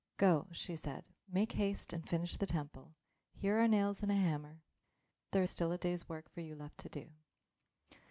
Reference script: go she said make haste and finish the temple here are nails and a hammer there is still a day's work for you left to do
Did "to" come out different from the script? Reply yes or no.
no